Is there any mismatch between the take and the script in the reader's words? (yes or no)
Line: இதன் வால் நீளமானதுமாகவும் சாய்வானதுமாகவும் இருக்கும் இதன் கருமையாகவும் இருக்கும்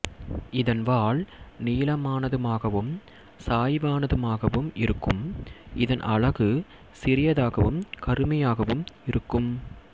yes